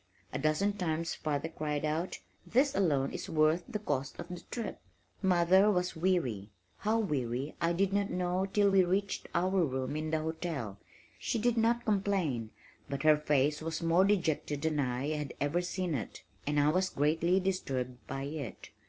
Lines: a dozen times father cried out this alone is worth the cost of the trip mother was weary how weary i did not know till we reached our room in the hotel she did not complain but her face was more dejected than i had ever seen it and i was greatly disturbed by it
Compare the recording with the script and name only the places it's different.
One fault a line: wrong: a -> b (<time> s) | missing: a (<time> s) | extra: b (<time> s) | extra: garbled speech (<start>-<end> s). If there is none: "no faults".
no faults